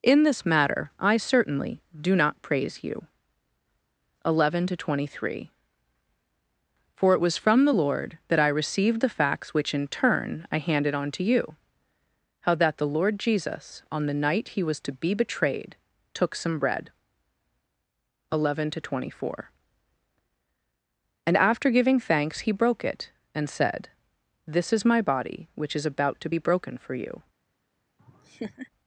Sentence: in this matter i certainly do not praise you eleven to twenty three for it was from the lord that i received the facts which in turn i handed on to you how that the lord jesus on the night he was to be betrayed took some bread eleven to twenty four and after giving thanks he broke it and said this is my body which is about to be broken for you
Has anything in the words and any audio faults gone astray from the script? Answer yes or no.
yes